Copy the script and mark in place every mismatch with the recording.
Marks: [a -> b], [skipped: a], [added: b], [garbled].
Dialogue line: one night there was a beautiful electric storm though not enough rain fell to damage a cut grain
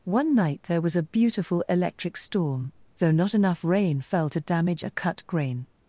one night there was a beautiful electric storm though not enough rain fell to damage a cut grain